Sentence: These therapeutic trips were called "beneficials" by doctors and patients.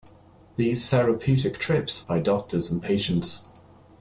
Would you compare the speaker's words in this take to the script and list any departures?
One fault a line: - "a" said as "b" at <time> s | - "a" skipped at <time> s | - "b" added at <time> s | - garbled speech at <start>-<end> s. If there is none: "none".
- "were called beneficials" skipped at 2.1 s